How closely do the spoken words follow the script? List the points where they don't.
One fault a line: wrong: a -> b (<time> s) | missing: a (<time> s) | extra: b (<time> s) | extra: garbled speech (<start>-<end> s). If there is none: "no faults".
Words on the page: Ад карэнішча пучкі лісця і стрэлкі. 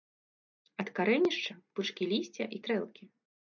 no faults